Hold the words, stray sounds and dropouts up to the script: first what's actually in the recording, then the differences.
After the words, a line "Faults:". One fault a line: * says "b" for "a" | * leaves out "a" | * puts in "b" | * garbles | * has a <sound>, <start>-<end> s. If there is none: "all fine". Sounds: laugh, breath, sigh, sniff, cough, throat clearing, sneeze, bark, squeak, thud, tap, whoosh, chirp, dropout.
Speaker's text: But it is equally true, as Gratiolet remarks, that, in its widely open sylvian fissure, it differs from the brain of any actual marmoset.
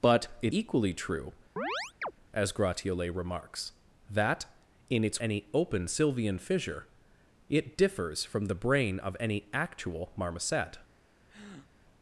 But it equally true, as Gratiolet remarks, that, in its any open sylvian fissure, it differs from the brain of any actual marmoset.
Faults:
* leaves out "is"
* has a chirp, 1.6-2.1 s
* says "any" for "widely"
* has a breath, 11.3-11.7 s